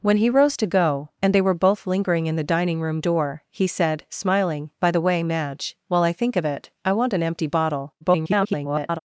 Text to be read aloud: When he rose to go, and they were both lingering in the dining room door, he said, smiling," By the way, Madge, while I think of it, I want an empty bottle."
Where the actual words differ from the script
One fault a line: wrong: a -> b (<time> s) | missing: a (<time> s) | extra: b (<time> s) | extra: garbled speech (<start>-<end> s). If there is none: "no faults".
extra: garbled speech (8.0-9.0 s)